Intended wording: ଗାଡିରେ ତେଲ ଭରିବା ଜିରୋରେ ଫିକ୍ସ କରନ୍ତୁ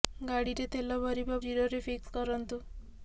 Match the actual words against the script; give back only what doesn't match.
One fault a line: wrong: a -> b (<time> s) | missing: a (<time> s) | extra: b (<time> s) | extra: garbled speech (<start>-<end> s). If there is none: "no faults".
no faults